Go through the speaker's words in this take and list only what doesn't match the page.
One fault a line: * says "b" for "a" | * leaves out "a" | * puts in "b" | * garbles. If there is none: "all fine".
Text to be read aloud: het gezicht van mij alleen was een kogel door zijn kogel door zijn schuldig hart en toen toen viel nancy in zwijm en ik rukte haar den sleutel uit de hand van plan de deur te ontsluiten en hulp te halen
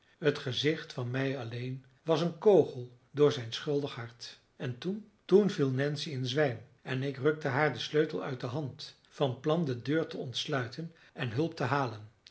* leaves out "kogel door zijn"